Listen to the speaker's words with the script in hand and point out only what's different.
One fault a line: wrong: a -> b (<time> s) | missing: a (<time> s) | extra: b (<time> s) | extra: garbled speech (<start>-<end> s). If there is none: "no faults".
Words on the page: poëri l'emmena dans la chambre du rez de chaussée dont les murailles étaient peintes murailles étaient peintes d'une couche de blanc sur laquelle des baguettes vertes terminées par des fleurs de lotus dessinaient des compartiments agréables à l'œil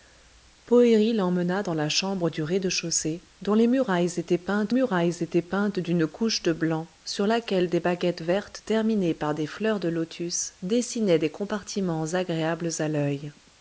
no faults